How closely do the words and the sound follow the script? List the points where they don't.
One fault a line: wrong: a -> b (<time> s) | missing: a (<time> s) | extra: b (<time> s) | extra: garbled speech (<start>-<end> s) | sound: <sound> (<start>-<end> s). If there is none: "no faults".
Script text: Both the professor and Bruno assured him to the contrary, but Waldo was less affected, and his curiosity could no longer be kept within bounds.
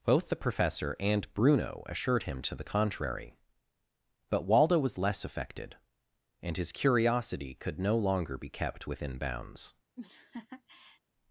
sound: laugh (10.0-11.0 s)